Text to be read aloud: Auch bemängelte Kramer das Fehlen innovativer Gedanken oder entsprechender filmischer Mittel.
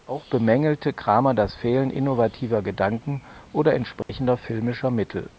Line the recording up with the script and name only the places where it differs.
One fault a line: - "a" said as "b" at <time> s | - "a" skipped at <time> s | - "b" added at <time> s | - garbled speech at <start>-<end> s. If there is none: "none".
none